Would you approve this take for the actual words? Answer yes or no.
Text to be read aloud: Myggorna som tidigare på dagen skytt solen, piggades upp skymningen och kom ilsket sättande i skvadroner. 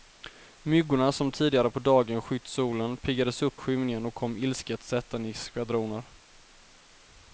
yes